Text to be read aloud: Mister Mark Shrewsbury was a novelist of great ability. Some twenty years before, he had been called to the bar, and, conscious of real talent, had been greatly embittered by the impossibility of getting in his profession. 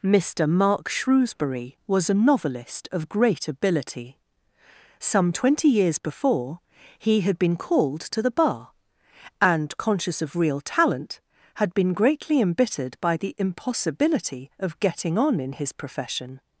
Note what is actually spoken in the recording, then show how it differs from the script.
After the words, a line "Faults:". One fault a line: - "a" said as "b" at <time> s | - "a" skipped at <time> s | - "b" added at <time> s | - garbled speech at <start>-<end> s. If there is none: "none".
Mister Mark Shrewsbury was a novelist of great ability. Some twenty years before, he had been called to the bar, and, conscious of real talent, had been greatly embittered by the impossibility of getting on in his profession.
Faults:
- "on" added at 15.2 s